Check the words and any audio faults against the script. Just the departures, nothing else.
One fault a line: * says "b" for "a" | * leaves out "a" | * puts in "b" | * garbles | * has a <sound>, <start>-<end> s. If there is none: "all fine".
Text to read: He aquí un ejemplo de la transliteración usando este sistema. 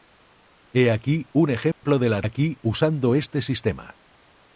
* has a dropout, 1.7-1.8 s
* says "aquí" for "transliteración"